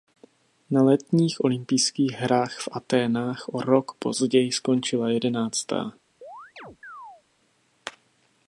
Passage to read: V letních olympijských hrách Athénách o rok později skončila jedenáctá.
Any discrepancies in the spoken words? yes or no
yes